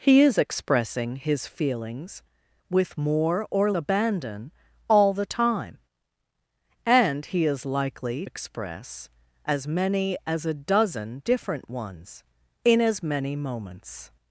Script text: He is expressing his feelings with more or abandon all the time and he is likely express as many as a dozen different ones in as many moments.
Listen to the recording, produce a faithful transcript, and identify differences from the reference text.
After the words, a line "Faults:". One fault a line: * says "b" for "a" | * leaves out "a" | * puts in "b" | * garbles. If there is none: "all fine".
He is expressing his feelings with more or abandon all the time and he is likely express as many as a dozen different ones in as many moments.
Faults:
all fine